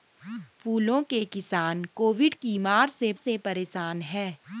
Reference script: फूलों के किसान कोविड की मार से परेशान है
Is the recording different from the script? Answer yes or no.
yes